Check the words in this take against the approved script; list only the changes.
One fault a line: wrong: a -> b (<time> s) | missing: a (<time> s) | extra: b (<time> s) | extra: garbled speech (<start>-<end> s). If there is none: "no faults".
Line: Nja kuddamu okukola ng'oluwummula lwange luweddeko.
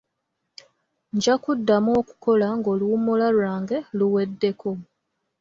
no faults